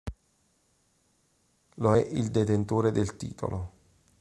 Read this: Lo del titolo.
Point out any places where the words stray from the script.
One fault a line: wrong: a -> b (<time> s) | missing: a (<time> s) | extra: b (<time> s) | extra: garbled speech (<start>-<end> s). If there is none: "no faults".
extra: è il detentore (1.9 s)